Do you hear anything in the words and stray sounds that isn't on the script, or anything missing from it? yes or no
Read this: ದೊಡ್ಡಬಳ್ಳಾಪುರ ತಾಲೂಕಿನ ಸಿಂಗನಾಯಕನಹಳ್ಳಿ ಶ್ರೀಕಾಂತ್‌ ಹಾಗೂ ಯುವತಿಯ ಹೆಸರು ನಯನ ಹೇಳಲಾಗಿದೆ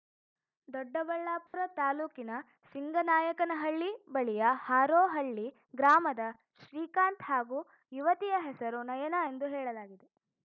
yes